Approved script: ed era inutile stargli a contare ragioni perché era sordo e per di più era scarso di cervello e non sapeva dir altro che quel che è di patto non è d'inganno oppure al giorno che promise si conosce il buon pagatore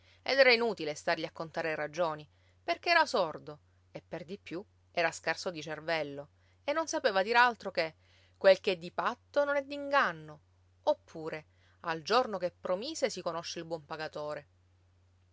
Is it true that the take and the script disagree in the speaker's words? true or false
false